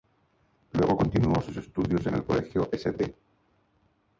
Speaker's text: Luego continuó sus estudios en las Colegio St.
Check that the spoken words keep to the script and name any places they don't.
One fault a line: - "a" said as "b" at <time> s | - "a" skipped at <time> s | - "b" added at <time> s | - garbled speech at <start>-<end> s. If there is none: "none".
- "las" said as "el" at 2.1 s